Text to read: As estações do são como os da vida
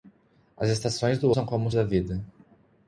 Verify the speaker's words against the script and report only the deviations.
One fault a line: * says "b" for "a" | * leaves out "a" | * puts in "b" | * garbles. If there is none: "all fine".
all fine